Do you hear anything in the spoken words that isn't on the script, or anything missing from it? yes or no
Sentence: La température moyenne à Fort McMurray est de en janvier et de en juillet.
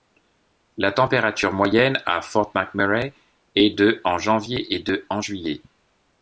no